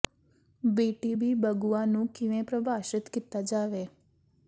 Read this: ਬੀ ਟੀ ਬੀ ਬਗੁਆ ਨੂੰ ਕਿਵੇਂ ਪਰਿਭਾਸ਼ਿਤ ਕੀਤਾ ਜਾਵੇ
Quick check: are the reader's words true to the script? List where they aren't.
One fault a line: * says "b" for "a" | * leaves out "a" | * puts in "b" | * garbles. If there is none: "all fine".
all fine